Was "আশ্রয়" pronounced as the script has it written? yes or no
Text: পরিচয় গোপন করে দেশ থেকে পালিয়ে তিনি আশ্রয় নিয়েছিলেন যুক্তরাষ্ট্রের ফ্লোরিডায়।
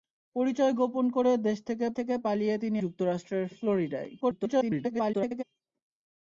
no